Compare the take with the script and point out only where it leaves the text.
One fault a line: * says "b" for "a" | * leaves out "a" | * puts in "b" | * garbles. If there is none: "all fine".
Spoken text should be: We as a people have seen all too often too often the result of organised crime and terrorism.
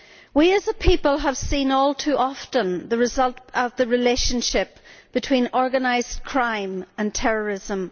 * says "the result of" for "too often"
* says "relationship between" for "result of"